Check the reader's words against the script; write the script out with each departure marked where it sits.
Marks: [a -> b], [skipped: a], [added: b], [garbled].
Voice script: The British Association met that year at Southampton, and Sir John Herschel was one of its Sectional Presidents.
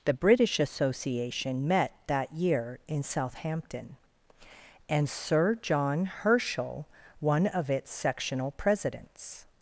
The British Association met that year [at -> in] Southampton, and Sir John Herschel [skipped: was] one of its Sectional Presidents.